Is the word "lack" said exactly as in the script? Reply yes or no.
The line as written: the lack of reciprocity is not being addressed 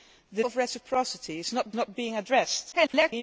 no